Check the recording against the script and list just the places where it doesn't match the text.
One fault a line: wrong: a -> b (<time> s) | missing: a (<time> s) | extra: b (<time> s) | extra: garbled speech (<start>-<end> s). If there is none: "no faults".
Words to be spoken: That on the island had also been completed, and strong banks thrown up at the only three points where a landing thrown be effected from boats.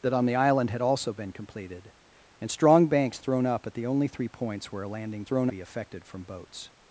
no faults